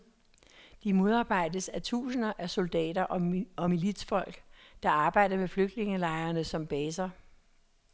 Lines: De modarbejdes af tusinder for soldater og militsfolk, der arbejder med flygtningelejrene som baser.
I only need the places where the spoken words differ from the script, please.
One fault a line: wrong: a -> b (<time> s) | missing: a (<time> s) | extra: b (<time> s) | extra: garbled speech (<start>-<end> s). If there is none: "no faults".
wrong: for -> af (2.4 s)